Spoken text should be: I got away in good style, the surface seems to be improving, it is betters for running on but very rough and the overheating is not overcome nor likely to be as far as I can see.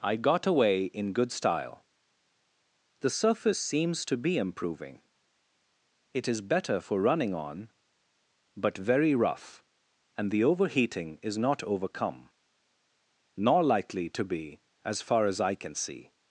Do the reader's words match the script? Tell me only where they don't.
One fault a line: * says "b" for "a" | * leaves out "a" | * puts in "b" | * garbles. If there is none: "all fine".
* says "better" for "betters"